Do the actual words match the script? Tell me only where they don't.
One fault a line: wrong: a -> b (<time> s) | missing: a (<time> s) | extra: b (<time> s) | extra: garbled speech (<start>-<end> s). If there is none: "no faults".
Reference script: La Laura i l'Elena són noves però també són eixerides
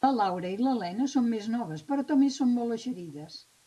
extra: més (1.4 s)
extra: molt (2.6 s)